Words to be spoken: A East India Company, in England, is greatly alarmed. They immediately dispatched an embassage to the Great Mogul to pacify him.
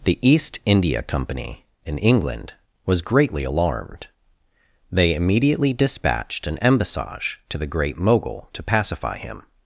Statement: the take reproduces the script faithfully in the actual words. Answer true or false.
false